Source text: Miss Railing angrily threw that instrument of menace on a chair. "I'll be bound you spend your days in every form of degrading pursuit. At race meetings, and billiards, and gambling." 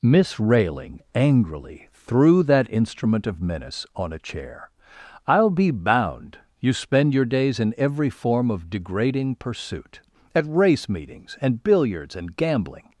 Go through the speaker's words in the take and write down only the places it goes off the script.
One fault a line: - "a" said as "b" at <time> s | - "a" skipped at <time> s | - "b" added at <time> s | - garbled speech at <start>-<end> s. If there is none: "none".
none